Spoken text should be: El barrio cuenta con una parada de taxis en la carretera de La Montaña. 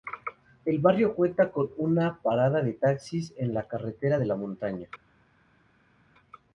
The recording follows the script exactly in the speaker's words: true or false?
true